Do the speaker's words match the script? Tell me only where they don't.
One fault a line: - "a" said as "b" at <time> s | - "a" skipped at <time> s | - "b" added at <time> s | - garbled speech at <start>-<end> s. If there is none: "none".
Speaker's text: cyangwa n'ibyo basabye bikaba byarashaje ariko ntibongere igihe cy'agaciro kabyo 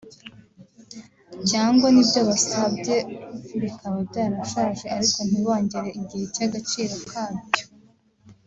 none